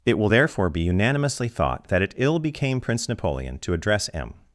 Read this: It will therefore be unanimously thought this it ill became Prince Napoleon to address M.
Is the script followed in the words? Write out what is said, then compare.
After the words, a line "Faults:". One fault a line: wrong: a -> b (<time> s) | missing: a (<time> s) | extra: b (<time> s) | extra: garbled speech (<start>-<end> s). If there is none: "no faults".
It will therefore be unanimously thought that it ill became Prince Napoleon to address M.
Faults:
wrong: this -> that (1.9 s)